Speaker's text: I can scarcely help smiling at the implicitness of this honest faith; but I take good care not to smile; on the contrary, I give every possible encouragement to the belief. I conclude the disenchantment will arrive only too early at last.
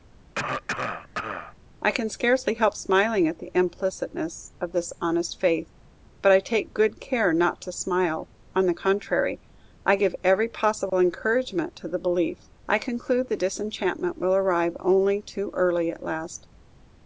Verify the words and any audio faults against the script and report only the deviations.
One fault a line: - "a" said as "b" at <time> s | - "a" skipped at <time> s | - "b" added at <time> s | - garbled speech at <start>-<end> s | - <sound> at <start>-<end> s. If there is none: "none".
- cough at 0.4-1.6 s
- dropout at 10.9-10.9 s